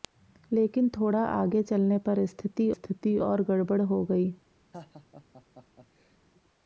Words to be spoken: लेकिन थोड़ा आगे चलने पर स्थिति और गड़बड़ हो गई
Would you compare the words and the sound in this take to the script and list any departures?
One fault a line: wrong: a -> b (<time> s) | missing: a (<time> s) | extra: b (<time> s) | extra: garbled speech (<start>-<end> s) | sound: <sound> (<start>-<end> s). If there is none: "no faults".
extra: स्थिति (2.7 s)
sound: laugh (4.7-6.2 s)